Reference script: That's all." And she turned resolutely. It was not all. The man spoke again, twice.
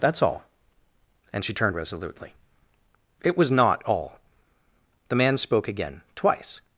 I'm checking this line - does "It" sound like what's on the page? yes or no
yes